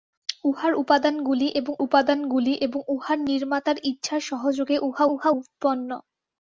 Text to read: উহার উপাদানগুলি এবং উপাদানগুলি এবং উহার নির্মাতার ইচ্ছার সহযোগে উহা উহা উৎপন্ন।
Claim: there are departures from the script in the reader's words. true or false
false